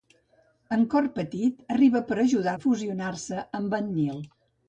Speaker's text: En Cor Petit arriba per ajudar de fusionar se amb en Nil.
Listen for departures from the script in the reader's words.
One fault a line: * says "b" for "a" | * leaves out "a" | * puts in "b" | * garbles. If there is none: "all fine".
all fine